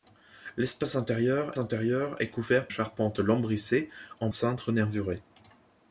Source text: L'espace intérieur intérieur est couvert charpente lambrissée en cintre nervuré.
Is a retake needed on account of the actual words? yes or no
no